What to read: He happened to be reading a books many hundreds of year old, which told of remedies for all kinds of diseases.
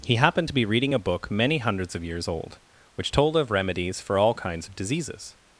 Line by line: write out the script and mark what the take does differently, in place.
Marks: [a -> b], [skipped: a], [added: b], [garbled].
He happened to be reading a [books -> book] many hundreds of [year -> years] old, which told of remedies for all kinds of diseases.